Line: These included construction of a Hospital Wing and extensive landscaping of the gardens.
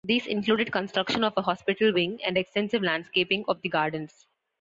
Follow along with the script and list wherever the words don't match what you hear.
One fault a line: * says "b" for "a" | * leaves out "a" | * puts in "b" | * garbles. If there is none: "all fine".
all fine